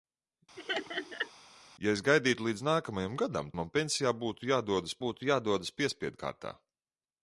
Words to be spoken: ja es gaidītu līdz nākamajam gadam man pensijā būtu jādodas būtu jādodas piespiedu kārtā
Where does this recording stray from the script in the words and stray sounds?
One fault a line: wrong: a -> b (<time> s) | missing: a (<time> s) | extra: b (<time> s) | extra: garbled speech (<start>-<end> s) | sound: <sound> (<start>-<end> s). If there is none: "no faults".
sound: laugh (0.6-1.3 s)